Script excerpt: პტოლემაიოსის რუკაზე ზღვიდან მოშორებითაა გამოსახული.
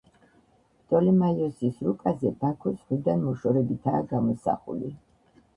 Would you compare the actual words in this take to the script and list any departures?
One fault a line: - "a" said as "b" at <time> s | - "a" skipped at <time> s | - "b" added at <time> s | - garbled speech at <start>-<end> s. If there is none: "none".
- "ბაქო" added at 2.5 s